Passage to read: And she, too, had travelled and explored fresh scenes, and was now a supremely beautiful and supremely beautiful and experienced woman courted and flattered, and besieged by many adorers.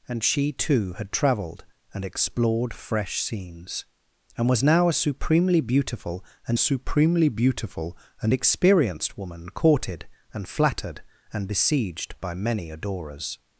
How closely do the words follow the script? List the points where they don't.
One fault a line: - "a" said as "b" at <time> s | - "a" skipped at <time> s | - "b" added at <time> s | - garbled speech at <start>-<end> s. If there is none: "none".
none